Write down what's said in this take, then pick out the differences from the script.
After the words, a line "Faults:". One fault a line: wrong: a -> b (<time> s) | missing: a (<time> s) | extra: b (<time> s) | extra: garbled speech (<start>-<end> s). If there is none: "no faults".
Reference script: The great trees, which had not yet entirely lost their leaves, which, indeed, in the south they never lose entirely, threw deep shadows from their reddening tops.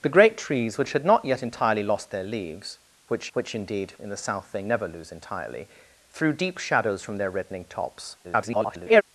The great trees, which had not yet entirely lost their leaves, which which, indeed, in the south they never lose entirely, threw deep shadows from their reddening tops. [garbled]
Faults:
extra: which (3.3 s)
extra: garbled speech (8.2-9.0 s)